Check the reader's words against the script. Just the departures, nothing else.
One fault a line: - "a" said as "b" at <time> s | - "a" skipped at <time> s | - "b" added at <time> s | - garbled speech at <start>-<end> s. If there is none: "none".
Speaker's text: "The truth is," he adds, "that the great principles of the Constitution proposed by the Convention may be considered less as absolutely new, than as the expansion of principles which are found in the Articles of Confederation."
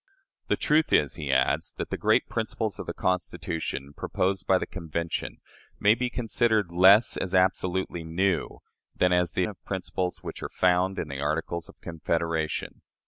- "expansion" skipped at 9.4 s